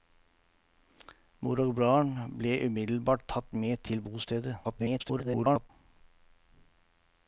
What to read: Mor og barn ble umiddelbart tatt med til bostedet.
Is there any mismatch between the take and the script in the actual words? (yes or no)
yes